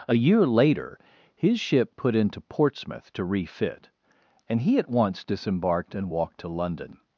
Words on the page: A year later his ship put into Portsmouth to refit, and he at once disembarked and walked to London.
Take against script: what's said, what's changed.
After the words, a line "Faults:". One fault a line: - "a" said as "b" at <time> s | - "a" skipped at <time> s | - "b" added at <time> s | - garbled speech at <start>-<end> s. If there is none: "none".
A year later his ship put into Portsmouth to refit, and he at once disembarked and walked to London.
Faults:
none